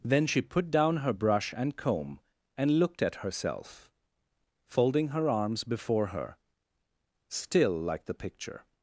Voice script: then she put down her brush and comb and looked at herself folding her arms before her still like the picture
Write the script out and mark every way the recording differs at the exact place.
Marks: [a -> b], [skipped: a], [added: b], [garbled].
then she put down her brush and comb and looked at herself folding her arms before her still like the picture